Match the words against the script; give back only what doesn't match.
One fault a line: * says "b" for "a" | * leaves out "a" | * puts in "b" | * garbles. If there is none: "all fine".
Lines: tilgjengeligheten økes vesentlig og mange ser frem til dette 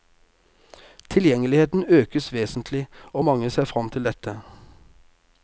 all fine